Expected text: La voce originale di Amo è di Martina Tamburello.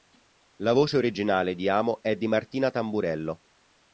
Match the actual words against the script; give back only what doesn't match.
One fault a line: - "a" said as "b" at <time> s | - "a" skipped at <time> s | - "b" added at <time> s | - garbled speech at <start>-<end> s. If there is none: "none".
none